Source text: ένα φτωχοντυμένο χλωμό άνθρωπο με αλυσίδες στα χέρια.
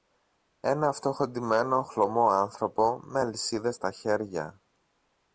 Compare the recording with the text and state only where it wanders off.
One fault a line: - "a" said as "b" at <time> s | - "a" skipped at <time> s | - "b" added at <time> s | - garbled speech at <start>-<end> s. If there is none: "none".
none